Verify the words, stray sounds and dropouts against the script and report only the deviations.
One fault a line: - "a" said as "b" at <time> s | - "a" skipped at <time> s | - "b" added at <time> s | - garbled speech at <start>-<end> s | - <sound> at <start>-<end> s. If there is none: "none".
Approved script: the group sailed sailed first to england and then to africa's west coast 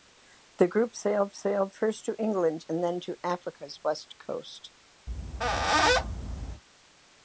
- squeak at 5.1-6.6 s